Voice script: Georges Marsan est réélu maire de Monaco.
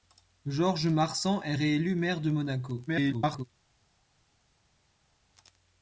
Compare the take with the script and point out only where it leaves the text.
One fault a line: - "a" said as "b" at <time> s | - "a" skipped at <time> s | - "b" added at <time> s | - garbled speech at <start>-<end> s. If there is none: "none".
- garbled speech at 2.9-3.5 s